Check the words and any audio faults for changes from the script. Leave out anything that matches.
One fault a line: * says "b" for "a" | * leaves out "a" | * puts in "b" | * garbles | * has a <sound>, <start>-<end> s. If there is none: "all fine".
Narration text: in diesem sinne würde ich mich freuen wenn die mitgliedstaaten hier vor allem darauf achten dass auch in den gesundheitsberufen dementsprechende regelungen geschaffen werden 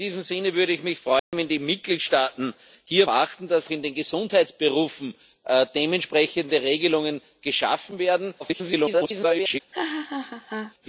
* has a dropout, 1.2-1.3 s
* leaves out "vor allem darauf"
* leaves out "auch"
* garbles
* has a laugh, 9.7-10.7 s